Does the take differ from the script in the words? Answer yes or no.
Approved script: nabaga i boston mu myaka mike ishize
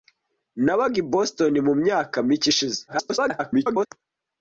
yes